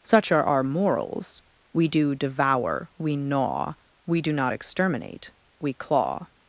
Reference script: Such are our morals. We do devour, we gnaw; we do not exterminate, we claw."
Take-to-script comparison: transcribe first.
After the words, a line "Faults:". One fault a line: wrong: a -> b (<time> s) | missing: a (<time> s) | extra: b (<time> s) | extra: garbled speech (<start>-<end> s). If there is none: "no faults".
Such are our morals. We do devour, we gnaw; we do not exterminate, we claw."
Faults:
no faults